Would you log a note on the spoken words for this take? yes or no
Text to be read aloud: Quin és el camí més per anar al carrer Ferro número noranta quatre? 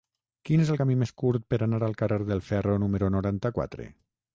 yes